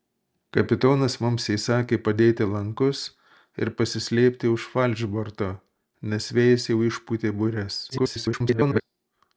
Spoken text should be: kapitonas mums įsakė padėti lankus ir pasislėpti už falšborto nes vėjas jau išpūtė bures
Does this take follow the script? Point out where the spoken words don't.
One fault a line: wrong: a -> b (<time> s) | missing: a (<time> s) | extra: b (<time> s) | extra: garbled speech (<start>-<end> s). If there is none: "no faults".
extra: garbled speech (7.9-8.8 s)